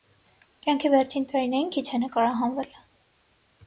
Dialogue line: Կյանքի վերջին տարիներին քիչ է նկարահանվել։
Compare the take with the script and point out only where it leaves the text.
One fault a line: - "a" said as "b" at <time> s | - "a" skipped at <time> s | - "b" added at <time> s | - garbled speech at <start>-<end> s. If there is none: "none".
none